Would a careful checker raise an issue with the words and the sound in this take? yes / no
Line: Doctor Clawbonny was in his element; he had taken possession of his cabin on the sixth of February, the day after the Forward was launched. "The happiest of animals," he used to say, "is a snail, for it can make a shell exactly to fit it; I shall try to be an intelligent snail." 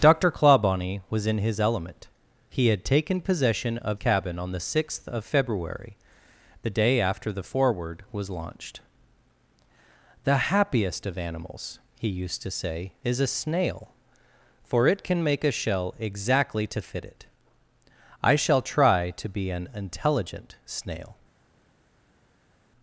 yes